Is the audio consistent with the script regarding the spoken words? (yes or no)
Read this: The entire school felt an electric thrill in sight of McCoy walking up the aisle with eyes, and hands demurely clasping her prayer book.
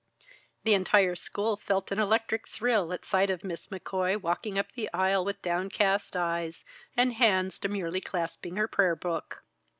no